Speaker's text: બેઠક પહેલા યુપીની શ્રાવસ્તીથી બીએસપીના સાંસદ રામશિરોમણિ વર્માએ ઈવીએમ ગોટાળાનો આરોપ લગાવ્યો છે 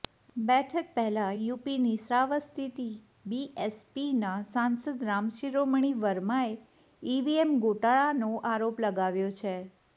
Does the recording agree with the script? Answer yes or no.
yes